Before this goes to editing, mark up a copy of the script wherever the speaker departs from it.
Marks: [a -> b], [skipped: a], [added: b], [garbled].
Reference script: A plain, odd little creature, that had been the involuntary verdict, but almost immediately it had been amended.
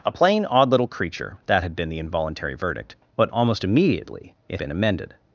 A plain, odd little creature, that had been the involuntary verdict, but almost immediately it [skipped: had] been amended.